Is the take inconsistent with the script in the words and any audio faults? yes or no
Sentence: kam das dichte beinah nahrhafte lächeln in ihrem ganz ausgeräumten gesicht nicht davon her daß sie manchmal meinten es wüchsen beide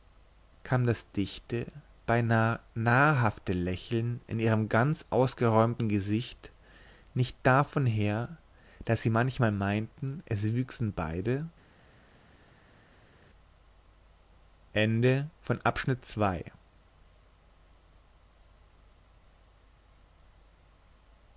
no